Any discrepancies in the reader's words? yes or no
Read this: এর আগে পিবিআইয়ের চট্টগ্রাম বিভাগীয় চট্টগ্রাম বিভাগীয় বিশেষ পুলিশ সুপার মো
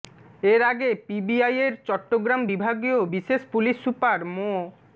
yes